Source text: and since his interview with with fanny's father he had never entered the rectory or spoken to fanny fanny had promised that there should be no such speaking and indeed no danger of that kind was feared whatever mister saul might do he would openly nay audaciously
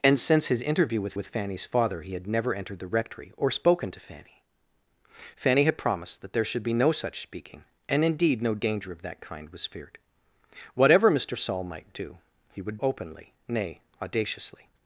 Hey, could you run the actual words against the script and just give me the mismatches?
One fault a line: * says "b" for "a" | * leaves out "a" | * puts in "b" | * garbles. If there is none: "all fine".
all fine